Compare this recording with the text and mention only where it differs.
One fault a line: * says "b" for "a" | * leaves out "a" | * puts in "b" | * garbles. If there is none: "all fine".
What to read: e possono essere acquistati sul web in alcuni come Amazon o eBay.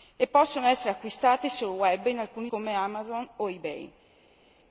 all fine